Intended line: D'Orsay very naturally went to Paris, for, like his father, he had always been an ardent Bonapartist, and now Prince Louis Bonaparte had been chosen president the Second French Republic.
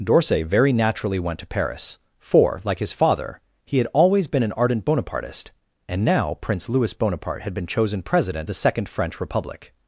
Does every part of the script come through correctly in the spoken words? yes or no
yes